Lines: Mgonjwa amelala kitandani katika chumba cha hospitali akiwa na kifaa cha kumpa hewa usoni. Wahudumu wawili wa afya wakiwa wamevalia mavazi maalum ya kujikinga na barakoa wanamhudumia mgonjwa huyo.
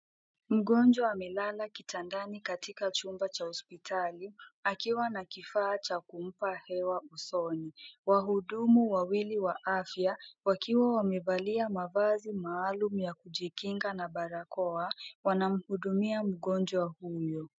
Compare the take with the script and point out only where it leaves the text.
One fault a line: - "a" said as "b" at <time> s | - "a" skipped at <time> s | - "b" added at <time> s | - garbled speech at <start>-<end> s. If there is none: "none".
none